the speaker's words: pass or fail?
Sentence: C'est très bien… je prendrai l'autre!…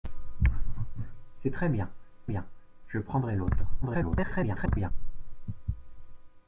fail